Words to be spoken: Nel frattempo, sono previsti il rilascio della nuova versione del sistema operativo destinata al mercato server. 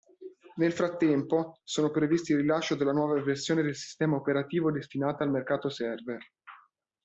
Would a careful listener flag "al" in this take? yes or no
no